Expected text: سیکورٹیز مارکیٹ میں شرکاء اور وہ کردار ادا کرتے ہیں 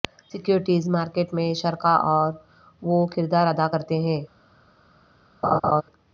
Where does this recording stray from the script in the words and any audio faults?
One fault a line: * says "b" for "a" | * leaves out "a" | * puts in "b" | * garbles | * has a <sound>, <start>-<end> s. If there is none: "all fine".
* has a laugh, 5.4-5.8 s